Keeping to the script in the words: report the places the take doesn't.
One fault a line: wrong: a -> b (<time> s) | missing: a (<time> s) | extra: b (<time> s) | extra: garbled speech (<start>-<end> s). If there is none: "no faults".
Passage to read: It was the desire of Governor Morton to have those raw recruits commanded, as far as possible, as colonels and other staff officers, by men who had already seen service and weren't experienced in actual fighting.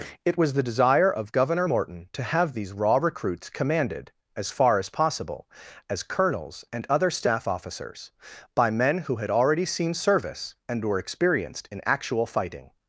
wrong: those -> these (2.5 s)
wrong: weren't -> were (10.8 s)